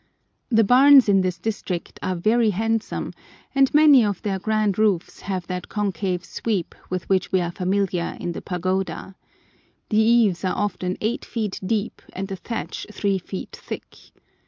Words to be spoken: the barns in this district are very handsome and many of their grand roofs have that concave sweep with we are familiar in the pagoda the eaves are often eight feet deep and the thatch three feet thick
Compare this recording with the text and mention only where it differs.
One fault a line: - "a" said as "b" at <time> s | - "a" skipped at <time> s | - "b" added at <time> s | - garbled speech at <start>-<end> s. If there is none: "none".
- "which" added at 7.1 s